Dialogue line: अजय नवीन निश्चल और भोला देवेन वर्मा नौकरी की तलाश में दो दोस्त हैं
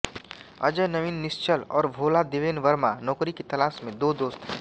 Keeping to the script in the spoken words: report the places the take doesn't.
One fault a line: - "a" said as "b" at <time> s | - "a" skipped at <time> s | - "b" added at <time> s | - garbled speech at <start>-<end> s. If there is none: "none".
none